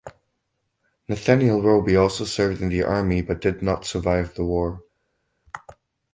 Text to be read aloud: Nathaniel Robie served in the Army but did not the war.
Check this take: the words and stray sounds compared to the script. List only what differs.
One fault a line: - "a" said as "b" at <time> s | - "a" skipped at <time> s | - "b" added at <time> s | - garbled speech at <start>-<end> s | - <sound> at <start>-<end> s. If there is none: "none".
- "also" added at 1.9 s
- "survive" added at 3.9 s